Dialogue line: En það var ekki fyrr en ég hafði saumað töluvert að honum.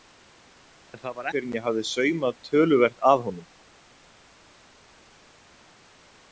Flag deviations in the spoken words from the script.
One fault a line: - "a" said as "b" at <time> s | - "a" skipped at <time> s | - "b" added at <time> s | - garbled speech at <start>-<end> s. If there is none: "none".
- "ekki" skipped at 1.3 s